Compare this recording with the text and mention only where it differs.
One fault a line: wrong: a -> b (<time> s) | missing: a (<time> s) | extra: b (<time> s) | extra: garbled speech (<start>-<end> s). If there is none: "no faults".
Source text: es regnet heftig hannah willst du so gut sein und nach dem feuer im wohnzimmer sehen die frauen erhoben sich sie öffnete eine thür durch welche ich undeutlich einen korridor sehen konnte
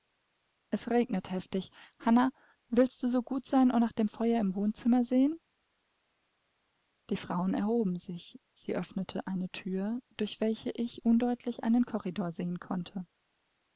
no faults